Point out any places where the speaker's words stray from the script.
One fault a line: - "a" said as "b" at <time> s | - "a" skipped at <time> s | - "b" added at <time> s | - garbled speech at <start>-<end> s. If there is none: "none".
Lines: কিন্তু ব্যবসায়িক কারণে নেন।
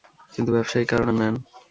none